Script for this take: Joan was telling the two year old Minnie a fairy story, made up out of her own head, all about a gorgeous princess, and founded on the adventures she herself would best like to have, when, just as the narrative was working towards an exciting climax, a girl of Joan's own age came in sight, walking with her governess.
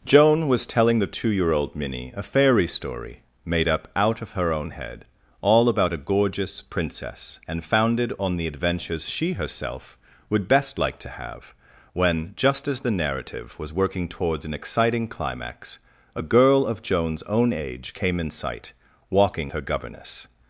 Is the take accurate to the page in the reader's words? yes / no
no